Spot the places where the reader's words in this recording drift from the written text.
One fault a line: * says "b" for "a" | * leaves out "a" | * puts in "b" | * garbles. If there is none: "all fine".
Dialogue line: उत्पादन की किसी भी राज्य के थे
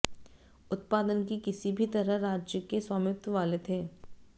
* puts in "तरह"
* puts in "स्वामित्व वाले"